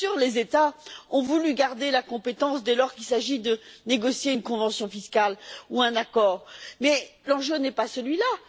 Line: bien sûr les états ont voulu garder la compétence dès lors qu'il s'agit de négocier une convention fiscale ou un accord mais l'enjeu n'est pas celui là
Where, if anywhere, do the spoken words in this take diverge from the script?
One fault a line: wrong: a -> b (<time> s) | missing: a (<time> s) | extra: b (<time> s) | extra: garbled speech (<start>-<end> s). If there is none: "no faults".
no faults